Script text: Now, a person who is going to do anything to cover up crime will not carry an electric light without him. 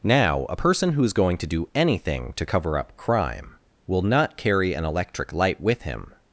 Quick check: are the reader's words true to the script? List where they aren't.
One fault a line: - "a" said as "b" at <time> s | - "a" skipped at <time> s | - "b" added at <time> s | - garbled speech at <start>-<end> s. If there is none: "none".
- "without" said as "with" at 5.6 s